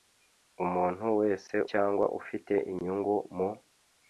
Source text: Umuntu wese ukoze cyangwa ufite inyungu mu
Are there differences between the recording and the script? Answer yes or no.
yes